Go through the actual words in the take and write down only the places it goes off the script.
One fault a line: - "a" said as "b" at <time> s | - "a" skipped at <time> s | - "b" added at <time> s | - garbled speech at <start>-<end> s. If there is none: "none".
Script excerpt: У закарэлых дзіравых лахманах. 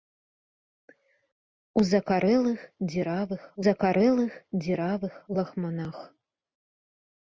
- "закарэлых дзіравых" added at 3.6 s